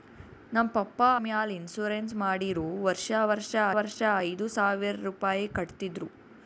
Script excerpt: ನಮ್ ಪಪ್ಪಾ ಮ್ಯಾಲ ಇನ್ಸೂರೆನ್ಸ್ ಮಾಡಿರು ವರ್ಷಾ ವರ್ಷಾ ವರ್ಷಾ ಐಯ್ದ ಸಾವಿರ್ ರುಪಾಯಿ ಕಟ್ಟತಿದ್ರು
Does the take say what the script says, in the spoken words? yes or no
yes